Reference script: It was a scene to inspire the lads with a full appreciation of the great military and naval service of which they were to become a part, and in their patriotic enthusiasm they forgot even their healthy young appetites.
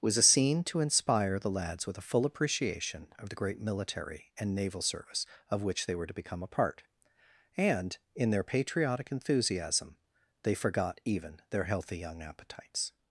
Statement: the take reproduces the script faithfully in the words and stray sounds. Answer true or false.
false